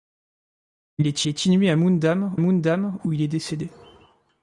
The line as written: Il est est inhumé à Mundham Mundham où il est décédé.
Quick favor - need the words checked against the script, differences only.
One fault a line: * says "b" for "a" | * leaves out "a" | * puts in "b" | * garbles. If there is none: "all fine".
all fine